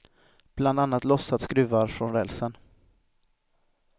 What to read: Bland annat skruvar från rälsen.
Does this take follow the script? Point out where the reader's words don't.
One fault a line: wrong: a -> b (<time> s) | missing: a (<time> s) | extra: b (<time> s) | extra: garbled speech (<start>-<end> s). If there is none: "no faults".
extra: lossat (1.0 s)